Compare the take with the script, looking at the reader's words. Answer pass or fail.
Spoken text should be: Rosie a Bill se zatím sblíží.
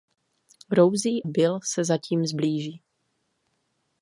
fail